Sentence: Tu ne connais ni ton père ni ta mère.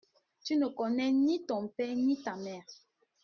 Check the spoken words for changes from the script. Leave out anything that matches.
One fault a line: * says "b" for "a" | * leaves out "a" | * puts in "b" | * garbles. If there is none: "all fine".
all fine